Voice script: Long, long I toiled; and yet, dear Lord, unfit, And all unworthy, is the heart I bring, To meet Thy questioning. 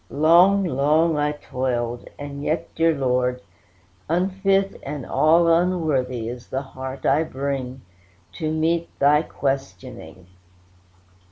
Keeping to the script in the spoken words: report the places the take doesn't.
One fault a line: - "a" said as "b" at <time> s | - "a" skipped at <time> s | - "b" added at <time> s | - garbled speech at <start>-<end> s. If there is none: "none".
none